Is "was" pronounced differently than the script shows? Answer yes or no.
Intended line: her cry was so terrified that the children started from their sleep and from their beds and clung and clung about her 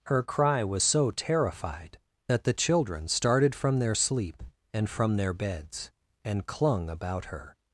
no